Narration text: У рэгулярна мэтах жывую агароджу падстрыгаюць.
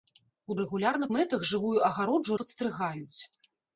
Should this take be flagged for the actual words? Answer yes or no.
no